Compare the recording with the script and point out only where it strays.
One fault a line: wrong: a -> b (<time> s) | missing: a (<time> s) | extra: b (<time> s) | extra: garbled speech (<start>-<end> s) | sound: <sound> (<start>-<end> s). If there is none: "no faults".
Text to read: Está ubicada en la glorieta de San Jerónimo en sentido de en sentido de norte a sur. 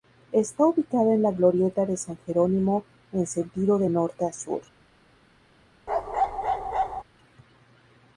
missing: en sentido de (3.9 s)
sound: bark (5.9-7.0 s)